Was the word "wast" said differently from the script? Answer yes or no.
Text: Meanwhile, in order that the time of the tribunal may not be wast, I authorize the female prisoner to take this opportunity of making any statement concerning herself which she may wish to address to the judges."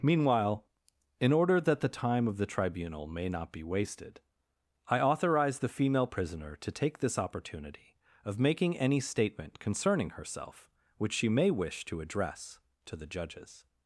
yes